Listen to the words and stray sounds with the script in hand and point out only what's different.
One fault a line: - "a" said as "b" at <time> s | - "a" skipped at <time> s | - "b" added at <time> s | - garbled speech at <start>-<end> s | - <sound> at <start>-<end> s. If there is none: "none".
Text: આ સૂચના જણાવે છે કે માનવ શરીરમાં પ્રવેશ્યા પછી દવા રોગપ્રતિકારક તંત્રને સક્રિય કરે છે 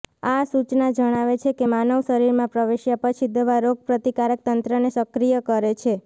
none